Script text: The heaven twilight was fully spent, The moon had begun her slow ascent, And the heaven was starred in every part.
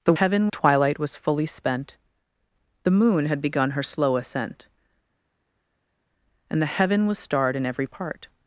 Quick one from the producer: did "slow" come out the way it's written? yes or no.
yes